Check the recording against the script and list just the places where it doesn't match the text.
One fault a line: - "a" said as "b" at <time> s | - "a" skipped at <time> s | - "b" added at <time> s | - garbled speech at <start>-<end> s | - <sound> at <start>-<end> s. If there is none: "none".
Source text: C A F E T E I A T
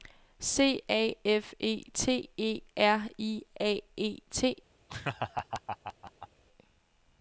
- "R" added at 2.8 s
- "E" added at 4.0 s
- laugh at 4.9-6.3 s